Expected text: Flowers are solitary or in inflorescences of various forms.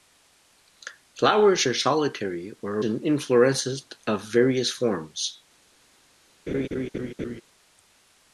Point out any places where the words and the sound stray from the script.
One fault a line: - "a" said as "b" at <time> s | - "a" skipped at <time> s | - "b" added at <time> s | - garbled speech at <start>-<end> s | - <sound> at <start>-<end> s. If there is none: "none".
- laugh at 6.5-7.4 s